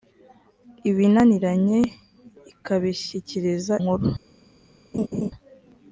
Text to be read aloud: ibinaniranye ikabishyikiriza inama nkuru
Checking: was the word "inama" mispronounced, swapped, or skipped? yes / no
yes